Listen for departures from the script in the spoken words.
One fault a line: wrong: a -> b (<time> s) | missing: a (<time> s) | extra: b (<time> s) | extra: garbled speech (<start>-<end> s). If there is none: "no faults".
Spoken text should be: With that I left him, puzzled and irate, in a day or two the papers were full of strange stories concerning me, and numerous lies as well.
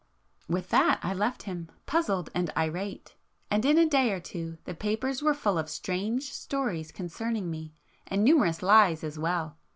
extra: and (3.5 s)